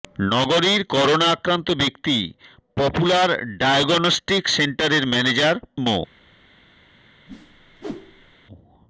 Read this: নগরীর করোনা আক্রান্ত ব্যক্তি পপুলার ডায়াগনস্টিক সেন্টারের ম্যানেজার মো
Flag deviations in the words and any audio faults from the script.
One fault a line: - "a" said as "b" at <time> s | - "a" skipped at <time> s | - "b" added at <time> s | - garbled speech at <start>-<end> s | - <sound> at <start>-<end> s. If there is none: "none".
- whoosh at 7.3-8.4 s